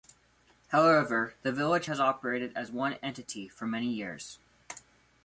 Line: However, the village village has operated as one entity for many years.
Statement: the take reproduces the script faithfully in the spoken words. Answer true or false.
false